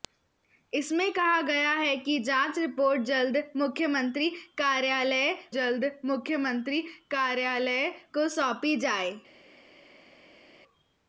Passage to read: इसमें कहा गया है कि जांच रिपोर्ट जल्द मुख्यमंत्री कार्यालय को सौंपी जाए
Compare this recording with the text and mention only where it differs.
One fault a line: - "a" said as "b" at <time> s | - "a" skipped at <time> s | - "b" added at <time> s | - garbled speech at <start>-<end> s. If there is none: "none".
- "जल्द मुख्यमंत्री कार्यालय" added at 5.5 s